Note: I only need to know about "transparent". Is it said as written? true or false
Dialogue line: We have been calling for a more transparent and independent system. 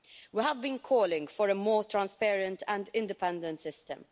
true